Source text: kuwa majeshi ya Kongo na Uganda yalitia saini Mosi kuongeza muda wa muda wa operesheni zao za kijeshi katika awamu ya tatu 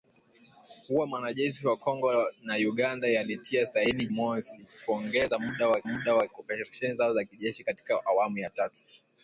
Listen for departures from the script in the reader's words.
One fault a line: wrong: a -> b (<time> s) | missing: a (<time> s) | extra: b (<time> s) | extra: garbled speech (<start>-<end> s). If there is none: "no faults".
no faults